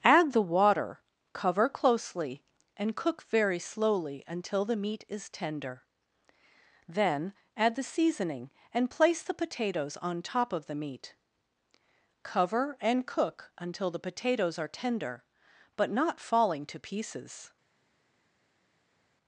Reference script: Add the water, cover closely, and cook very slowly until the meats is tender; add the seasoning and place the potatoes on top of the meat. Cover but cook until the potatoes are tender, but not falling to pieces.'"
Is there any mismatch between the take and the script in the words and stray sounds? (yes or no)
yes